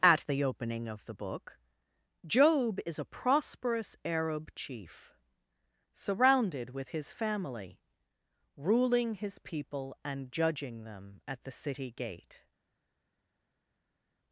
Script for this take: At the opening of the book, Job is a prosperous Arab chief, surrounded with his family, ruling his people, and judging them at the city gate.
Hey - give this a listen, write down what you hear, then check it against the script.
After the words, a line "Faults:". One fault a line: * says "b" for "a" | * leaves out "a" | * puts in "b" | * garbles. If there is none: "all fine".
At the opening of the book, Job is a prosperous Arab chief, surrounded with his family, ruling his people, and judging them at the city gate.
Faults:
all fine